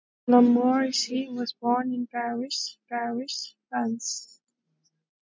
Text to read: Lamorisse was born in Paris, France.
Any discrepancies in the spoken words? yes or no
yes